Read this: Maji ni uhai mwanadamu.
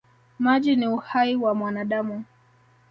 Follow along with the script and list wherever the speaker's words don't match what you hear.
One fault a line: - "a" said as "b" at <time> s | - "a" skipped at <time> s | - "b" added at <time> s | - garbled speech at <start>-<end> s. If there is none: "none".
- "wa" added at 1.4 s